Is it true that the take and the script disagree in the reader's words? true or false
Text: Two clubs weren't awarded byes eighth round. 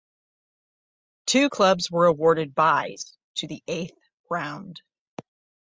true